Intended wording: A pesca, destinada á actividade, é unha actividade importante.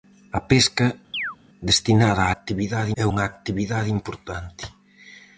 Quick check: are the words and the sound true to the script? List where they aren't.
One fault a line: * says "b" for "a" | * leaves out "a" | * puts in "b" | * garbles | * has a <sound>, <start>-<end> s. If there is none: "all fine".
* has a chirp, 1.1-1.4 s